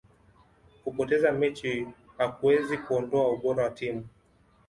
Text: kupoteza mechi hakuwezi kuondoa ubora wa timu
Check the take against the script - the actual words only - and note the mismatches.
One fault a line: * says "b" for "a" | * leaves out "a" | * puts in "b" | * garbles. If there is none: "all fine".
all fine